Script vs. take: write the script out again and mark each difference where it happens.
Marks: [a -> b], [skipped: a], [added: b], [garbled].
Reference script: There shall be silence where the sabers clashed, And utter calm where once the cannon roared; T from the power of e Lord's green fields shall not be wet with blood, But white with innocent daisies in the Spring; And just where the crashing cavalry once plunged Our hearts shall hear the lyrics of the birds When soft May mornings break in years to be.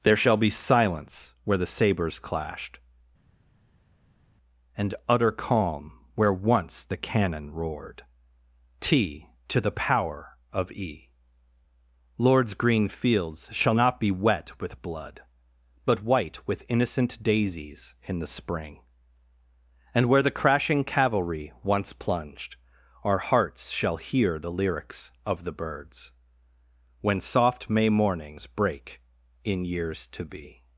There shall be silence where the sabers clashed, And utter calm where once the cannon roared; T [from -> to] the power of e Lord's green fields shall not be wet with blood, But white with innocent daisies in the Spring; And [skipped: just] where the crashing cavalry once plunged Our hearts shall hear the lyrics of the birds When soft May mornings break in years to be.